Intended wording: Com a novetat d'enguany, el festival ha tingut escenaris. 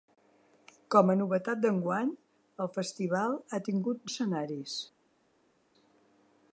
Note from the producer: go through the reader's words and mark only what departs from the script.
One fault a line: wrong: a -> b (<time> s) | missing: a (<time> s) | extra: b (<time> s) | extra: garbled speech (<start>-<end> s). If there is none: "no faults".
no faults